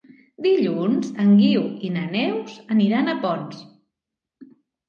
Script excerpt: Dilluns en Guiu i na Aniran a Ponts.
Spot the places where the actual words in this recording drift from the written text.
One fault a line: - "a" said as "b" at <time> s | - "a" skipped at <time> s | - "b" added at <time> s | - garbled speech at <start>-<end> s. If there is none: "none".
- "Neus" added at 2.1 s